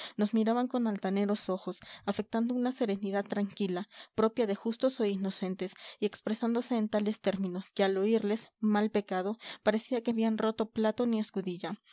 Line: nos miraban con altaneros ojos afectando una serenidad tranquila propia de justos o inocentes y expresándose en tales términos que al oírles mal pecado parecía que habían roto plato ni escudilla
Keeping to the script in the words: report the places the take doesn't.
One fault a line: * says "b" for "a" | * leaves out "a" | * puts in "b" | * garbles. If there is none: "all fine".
all fine